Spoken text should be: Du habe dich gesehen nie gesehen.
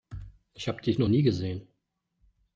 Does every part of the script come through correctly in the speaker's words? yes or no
no